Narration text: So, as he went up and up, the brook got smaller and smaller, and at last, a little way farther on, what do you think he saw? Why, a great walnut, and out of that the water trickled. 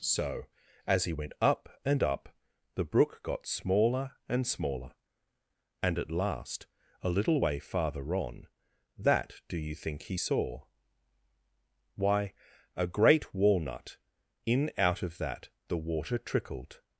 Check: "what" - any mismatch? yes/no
yes